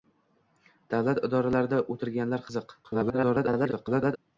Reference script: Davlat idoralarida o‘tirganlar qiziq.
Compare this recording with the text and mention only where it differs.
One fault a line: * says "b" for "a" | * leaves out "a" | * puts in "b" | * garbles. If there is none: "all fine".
* garbles